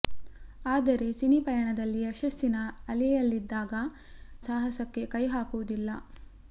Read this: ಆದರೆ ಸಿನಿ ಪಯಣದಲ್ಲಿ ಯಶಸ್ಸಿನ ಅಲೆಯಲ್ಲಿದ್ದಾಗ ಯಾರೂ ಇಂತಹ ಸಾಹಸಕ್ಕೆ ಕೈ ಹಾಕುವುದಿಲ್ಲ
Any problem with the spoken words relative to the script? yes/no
yes